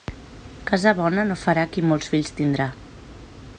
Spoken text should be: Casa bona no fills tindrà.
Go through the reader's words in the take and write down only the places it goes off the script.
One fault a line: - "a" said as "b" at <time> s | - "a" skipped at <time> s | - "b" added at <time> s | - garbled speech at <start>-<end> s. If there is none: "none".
- "farà qui molts" added at 1.4 s